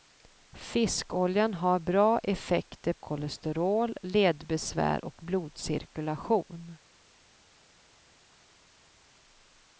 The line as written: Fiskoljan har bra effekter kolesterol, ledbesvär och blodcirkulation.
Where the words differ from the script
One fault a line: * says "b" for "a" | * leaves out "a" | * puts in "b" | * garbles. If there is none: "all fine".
all fine